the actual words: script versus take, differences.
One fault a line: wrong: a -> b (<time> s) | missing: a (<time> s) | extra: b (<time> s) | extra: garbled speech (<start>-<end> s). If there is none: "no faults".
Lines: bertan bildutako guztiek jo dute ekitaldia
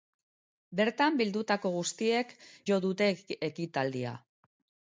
no faults